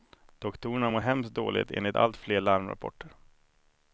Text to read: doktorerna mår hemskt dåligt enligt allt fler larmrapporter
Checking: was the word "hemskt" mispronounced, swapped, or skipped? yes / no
no